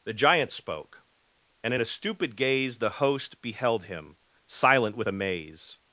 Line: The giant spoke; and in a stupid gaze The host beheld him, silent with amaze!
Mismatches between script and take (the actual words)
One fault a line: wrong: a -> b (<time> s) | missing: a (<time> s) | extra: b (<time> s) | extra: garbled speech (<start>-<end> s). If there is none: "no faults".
no faults